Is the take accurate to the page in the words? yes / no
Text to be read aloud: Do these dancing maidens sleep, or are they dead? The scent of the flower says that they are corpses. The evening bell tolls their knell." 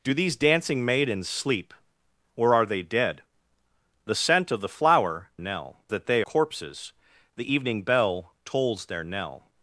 no